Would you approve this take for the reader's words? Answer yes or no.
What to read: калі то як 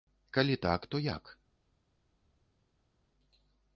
no